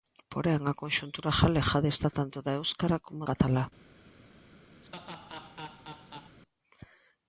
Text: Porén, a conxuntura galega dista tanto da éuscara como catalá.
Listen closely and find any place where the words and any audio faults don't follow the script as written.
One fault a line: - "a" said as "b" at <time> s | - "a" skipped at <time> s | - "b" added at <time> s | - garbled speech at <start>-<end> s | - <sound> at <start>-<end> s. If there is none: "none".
- laugh at 4.8-6.4 s